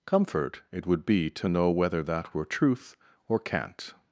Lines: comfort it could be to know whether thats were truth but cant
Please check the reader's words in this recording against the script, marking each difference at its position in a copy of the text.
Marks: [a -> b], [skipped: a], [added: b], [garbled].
comfort it [could -> would] be to know whether [thats -> that] were truth [but -> or] cant